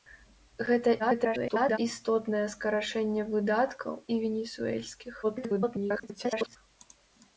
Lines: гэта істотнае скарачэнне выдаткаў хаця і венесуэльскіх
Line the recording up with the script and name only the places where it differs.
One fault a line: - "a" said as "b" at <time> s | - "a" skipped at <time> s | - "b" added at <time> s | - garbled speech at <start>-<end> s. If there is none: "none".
- garbled speech at 1.0-1.8 s
- "хаця" skipped at 3.9 s
- garbled speech at 5.2-6.6 s